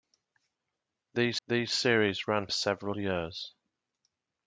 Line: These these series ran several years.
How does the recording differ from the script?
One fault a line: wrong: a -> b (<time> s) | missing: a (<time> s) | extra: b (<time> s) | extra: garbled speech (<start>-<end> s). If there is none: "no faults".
no faults